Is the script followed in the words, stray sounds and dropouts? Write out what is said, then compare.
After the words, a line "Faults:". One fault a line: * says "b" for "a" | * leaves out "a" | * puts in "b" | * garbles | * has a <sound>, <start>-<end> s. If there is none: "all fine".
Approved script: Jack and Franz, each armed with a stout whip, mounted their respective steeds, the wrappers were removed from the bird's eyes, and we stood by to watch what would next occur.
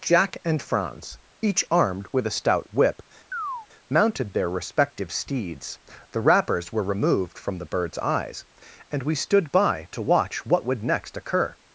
Jack and Franz, each armed with a stout whip, mounted their respective steeds, the wrappers were removed from the bird's eyes, and we stood by to watch what would next occur.
Faults:
* has a chirp, 3.3-3.7 s